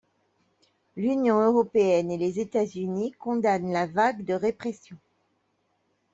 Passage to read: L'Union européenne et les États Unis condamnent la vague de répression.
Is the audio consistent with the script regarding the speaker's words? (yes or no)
yes